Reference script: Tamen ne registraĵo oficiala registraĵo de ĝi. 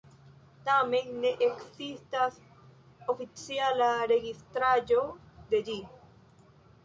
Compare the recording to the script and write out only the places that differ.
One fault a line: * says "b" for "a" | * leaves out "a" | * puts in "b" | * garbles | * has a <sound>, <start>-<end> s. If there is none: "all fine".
* says "ekzistas" for "registraĵo"